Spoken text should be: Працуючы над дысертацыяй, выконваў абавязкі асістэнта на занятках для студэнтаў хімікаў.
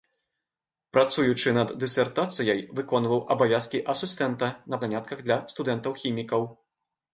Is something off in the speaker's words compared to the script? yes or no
no